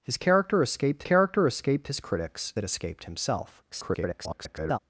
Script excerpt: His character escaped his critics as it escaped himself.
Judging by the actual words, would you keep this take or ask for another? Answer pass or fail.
fail